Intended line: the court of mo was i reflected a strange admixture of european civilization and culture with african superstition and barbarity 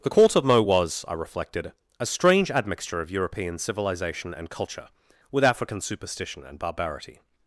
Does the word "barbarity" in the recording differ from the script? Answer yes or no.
no